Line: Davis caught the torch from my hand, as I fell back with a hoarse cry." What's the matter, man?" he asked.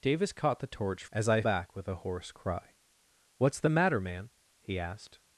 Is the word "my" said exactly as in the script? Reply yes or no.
no